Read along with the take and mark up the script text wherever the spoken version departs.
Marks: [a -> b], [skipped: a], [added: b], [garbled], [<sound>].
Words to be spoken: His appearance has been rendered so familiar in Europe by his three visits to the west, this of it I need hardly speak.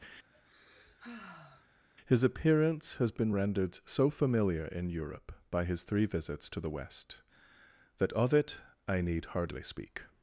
[sigh] His appearance has been rendered so familiar in Europe by his three visits to the west, [this -> that] of it I need hardly speak.